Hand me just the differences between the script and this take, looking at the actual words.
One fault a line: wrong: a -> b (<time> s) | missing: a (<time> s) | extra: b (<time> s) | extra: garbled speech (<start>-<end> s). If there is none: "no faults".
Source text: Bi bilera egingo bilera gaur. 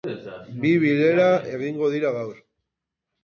wrong: bilera -> dira (1.9 s)